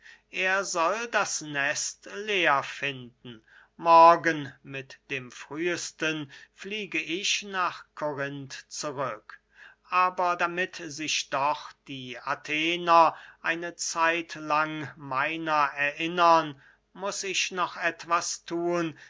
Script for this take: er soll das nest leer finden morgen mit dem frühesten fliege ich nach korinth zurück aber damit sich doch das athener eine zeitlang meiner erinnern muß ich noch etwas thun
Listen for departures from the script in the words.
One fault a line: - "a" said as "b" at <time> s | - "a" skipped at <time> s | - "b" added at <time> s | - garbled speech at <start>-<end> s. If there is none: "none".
- "das" said as "die" at 11.9 s